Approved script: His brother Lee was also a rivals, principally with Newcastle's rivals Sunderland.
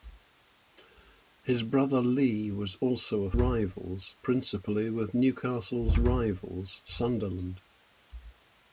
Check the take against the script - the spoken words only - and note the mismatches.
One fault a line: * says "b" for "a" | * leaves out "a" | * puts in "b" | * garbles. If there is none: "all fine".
all fine